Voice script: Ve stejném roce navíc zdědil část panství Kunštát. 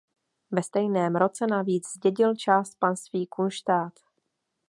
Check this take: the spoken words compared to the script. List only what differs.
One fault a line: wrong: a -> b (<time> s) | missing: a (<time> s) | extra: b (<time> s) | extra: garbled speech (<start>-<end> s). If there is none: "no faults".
no faults